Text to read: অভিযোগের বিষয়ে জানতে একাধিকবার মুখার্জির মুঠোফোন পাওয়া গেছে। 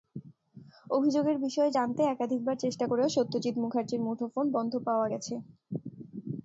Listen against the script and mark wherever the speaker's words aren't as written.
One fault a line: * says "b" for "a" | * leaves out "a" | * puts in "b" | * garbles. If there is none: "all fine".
* puts in "চেষ্টা করেও সত্যজিৎ"
* puts in "বন্ধ"